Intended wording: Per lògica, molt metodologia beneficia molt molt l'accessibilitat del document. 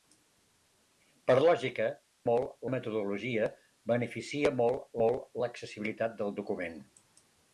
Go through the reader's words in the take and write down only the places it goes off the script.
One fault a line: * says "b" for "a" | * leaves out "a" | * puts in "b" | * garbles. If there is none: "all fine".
all fine